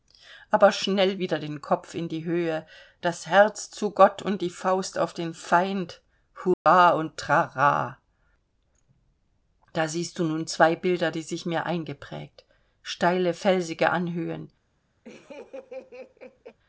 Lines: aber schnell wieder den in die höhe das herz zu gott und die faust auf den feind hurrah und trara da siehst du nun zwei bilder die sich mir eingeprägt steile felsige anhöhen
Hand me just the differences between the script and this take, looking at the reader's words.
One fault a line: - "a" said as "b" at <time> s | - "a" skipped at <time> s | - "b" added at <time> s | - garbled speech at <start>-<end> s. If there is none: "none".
- "kopf" added at 1.6 s